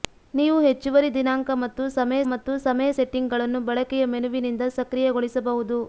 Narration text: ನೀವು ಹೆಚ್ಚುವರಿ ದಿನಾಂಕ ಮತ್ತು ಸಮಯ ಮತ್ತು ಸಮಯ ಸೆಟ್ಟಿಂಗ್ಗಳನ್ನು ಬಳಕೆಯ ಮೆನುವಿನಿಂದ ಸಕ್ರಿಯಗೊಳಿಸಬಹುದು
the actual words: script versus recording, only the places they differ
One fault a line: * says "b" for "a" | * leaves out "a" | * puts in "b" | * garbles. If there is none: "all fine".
all fine